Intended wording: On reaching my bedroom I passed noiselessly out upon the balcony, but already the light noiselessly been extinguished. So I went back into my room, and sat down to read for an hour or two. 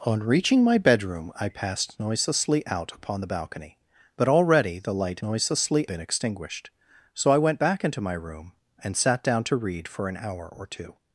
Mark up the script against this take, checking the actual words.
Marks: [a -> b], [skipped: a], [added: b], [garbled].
On reaching my bedroom I passed noiselessly out upon the balcony, but already the light noiselessly been extinguished. So I went back into my room, and sat down to read for an hour or two.